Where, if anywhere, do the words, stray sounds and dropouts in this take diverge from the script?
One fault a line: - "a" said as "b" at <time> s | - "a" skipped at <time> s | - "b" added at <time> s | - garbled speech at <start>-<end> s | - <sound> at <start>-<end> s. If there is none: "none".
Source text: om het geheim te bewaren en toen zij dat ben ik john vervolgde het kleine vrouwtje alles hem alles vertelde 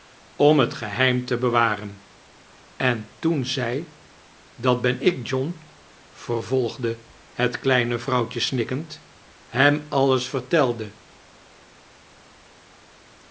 - "alles" said as "snikkend" at 8.4 s